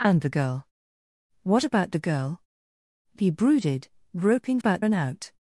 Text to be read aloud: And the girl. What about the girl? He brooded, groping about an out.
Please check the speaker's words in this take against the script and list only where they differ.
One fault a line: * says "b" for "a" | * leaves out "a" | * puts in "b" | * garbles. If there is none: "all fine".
all fine